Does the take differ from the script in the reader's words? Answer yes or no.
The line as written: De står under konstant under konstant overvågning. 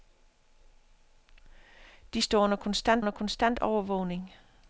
no